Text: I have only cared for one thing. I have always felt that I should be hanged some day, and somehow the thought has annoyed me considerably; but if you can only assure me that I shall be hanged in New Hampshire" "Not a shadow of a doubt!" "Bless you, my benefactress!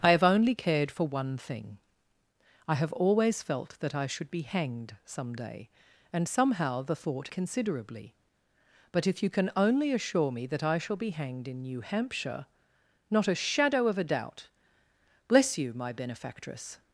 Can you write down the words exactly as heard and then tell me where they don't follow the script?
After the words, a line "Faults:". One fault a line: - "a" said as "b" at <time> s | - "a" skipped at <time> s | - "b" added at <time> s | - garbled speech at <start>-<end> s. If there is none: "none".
I have only cared for one thing. I have always felt that I should be hanged some day, and somehow the thought considerably; but if you can only assure me that I shall be hanged in New Hampshire" "Not a shadow of a doubt!" "Bless you, my benefactress!
Faults:
- "has annoyed me" skipped at 7.3 s